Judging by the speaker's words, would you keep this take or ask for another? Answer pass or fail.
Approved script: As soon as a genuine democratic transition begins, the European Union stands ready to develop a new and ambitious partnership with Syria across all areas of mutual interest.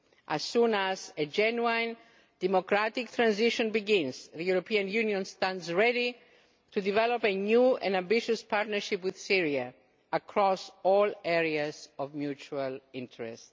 pass